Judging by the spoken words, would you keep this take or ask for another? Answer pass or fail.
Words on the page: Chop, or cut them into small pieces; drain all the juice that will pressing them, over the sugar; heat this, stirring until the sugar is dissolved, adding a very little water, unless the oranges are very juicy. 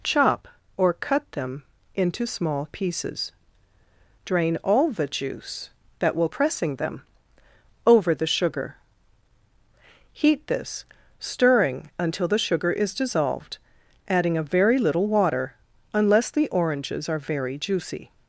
pass